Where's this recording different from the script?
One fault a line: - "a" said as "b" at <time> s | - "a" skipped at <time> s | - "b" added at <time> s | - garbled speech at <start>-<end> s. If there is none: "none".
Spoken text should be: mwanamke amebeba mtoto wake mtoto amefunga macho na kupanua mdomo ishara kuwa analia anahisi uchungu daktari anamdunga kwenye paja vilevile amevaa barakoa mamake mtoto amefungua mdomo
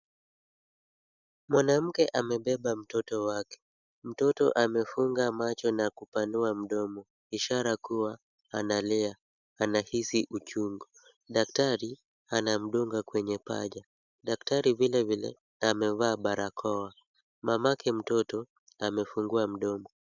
- "daktari" added at 14.2 s